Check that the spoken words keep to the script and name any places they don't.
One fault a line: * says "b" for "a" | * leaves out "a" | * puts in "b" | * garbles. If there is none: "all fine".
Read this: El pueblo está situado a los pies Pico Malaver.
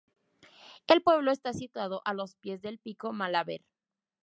* puts in "del"